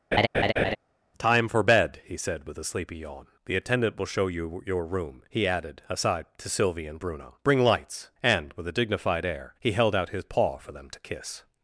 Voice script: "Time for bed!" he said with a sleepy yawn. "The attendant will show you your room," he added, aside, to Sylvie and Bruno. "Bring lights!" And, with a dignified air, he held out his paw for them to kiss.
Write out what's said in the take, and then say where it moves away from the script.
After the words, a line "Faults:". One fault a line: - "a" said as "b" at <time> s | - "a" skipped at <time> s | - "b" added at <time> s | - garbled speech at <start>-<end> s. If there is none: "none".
"Time for bed!" he said with a sleepy yawn. "The attendant will show you your room," he added, aside, to Sylvie and Bruno. "Bring lights!" And, with a dignified air, he held out his paw for them to kiss.
Faults:
none